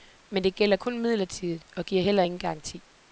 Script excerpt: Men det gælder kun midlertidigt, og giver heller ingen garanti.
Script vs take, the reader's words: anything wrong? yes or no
no